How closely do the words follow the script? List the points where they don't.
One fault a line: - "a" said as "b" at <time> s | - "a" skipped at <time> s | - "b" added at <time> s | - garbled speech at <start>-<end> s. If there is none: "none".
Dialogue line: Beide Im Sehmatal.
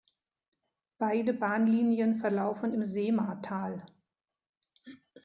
- "Bahnlinien verlaufen" added at 1.3 s